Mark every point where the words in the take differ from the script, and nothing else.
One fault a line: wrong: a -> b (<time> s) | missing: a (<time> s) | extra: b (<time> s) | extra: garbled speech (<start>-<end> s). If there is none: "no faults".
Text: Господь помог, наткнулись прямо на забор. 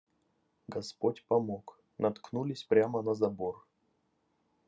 no faults